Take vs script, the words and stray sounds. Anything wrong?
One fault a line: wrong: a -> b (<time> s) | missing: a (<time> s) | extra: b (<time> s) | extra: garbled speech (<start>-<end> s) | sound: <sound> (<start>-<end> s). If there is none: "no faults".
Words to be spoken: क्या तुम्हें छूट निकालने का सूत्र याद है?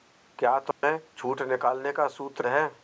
sound: dropout (0.7-0.8 s)
missing: याद (2.5 s)